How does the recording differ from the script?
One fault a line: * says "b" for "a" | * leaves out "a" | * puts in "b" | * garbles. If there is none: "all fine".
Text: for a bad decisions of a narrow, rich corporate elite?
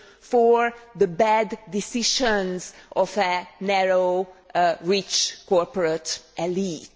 * says "the" for "a"